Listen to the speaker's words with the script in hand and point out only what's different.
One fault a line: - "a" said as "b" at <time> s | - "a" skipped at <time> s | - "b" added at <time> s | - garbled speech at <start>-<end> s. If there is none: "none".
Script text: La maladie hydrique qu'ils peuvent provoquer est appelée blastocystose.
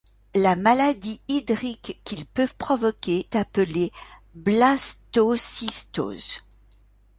- "est" skipped at 3.3 s